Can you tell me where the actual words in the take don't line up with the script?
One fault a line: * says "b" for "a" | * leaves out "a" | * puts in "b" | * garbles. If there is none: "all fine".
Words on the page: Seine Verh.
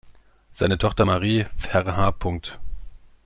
* puts in "Tochter Marie"